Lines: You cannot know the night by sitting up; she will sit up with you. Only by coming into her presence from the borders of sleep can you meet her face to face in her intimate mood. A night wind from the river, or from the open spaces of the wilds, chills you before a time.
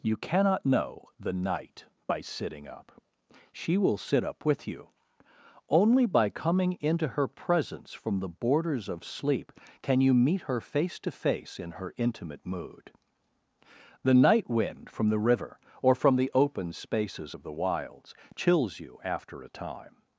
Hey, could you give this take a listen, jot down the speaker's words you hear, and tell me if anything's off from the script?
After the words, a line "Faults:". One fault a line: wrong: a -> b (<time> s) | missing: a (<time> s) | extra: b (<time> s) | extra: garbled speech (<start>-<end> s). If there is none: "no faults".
You cannot know the night by sitting up; she will sit up with you. Only by coming into her presence from the borders of sleep can you meet her face to face in her intimate mood. The night wind from the river, or from the open spaces of the wilds, chills you after a time.
Faults:
wrong: A -> The (14.0 s)
wrong: before -> after (19.0 s)